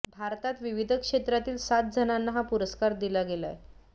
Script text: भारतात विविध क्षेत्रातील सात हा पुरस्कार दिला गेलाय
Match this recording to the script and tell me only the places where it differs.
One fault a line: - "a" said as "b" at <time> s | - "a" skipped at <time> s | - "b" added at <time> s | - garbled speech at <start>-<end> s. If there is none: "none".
- "जणांना" added at 1.9 s